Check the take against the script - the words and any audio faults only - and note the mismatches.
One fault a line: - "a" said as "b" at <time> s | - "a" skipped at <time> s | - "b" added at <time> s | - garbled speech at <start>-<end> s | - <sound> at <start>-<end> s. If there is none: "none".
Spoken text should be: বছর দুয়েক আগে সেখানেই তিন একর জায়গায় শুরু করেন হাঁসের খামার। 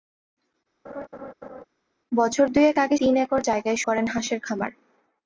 - laugh at 0.8-1.6 s
- "সেখানেই" skipped at 3.0 s
- "শুরু" skipped at 3.8 s